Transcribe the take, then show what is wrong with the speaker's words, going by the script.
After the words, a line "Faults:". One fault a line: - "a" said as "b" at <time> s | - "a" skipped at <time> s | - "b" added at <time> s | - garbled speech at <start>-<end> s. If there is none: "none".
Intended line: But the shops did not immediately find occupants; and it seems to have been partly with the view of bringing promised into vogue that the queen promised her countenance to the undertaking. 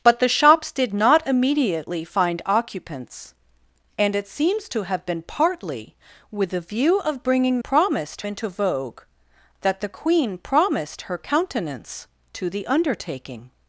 But the shops did not immediately find occupants; and it seems to have been partly with the view of bringing promised into vogue that the queen promised her countenance to the undertaking.
Faults:
none